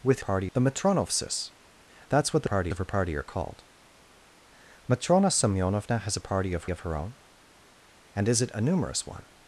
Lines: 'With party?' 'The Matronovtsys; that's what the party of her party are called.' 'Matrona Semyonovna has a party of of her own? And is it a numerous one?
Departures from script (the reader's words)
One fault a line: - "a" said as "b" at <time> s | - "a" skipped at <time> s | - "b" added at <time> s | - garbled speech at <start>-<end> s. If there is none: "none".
none